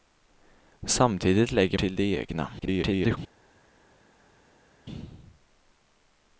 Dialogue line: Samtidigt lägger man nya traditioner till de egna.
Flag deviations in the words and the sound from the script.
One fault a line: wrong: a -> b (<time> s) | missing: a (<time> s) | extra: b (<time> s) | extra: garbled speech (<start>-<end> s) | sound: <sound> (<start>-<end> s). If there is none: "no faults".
missing: man nya traditioner (1.8 s)
extra: garbled speech (2.6-3.2 s)